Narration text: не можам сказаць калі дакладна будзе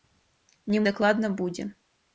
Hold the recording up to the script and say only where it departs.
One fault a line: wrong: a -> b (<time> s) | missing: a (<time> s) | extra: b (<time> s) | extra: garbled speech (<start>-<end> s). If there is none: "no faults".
missing: можам сказаць калі (0.8 s)